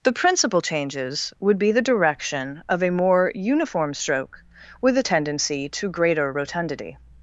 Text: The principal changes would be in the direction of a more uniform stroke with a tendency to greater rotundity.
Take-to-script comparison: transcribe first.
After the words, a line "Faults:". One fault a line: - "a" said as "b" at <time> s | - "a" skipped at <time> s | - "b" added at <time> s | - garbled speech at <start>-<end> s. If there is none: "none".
The principal changes would be the direction of a more uniform stroke with a tendency to greater rotundity.
Faults:
- "in" skipped at 1.7 s